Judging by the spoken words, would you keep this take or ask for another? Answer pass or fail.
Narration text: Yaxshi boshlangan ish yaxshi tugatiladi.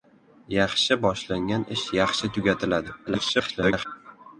fail